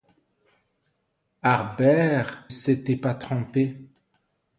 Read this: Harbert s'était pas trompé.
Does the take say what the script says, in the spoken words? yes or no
yes